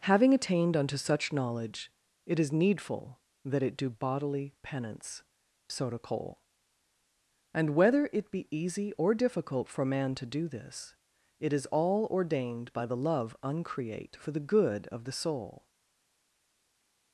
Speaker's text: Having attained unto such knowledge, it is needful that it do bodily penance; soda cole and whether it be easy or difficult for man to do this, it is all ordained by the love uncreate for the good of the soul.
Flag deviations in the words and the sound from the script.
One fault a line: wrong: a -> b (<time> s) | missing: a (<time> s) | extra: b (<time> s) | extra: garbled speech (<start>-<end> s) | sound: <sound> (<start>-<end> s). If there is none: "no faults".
no faults